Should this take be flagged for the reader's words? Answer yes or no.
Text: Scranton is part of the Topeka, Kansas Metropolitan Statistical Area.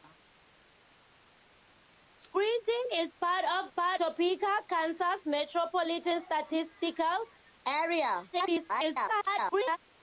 yes